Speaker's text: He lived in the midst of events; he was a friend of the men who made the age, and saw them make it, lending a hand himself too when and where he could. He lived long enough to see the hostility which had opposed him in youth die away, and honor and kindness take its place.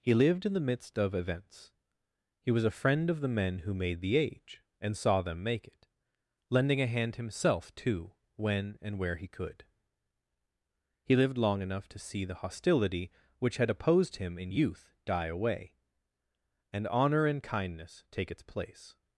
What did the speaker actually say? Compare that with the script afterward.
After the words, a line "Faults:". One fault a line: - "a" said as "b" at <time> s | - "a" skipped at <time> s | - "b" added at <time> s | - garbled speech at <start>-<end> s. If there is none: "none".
He lived in the midst of events; he was a friend of the men who made the age, and saw them make it, lending a hand himself too when and where he could. He lived long enough to see the hostility which had opposed him in youth die away, and honor and kindness take its place.
Faults:
none